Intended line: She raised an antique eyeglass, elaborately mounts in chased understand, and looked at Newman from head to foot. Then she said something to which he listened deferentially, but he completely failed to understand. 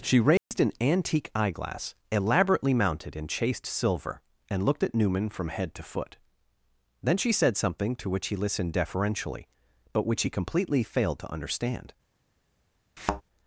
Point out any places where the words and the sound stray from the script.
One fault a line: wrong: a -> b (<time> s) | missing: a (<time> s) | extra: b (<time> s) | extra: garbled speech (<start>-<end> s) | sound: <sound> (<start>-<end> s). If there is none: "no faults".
sound: dropout (0.4-0.5 s)
wrong: mounts -> mounted (2.7 s)
wrong: understand -> silver (3.7 s)
extra: which (10.1 s)
sound: thud (13.0-13.2 s)